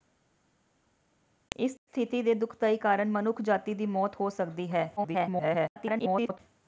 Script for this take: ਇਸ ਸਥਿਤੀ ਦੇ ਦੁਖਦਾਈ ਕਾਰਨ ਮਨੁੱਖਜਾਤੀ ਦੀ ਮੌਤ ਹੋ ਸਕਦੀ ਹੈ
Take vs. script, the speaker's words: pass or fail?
fail